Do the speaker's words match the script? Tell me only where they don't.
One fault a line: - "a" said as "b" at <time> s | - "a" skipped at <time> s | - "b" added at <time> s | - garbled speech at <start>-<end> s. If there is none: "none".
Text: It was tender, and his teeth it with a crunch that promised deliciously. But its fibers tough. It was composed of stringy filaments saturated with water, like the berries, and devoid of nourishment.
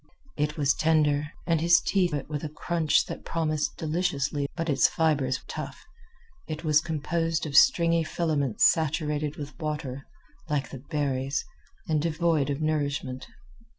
none